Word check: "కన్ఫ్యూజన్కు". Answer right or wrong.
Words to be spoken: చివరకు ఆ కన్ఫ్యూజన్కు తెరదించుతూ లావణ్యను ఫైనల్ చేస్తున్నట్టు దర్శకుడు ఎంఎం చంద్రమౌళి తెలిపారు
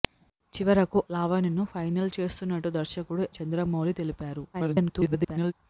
wrong